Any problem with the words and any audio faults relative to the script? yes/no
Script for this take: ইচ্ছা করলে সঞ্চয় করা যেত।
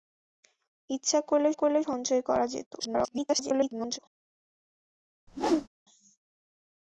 yes